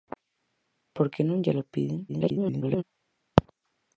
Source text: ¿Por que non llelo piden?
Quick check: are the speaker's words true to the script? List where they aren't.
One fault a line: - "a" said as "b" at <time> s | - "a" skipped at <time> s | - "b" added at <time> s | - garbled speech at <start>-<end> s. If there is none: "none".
- garbled speech at 2.1-2.8 s